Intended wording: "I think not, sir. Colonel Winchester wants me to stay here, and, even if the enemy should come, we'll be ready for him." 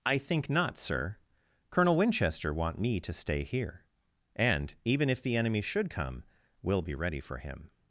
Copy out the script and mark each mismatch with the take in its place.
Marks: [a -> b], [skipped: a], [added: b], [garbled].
"I think not, sir. Colonel Winchester [wants -> want] me to stay here, and, even if the enemy should come, we'll be ready for him."